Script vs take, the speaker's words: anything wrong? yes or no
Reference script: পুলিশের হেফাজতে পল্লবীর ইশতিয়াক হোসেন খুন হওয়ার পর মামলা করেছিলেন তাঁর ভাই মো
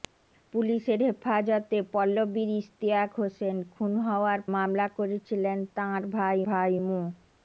yes